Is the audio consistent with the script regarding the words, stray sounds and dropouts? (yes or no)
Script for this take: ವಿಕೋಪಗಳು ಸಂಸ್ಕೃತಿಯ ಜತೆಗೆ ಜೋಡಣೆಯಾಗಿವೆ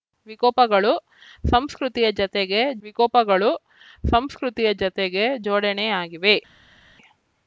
no